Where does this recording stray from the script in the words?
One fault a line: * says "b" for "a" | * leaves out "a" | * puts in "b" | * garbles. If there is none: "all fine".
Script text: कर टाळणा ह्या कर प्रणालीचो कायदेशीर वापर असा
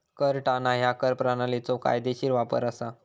all fine